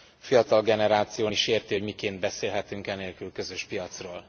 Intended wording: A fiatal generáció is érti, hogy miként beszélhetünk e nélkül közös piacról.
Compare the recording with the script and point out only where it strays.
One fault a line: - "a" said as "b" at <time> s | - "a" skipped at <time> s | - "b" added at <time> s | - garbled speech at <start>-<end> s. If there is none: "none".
none